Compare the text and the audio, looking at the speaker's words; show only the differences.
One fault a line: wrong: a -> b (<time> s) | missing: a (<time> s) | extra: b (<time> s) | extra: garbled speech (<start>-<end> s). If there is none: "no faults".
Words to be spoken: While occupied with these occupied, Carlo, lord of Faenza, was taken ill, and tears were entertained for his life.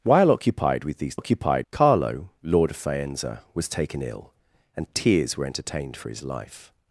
no faults